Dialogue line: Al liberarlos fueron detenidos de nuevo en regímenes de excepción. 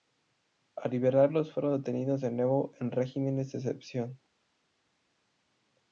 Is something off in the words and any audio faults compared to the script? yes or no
no